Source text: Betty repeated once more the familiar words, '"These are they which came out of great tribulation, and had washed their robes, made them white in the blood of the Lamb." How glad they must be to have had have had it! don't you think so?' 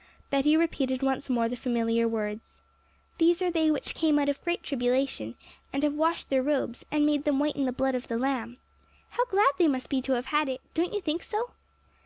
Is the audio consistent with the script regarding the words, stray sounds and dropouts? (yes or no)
no